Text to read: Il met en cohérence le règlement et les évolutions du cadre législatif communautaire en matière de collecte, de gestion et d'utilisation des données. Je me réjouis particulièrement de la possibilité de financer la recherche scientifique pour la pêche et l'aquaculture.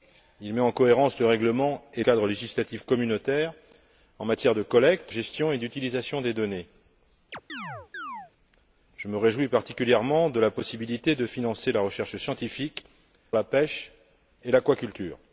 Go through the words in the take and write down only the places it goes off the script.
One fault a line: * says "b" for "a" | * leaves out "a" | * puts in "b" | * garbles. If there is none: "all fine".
* leaves out "les évolutions du"
* leaves out "de"
* leaves out "pour"